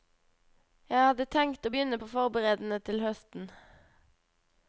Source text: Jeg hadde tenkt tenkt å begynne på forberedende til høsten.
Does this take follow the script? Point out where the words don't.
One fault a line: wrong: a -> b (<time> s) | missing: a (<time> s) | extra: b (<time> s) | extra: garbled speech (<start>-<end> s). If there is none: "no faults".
missing: tenkt (1.7 s)